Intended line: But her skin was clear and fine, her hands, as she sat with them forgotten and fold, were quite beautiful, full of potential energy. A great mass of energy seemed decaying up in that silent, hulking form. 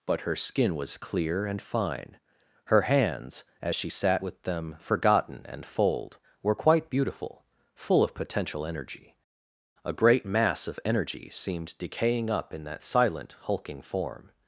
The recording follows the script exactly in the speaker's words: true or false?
true